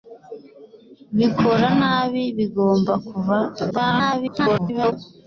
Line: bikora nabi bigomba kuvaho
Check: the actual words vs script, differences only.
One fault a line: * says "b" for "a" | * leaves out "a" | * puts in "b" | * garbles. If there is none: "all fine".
* garbles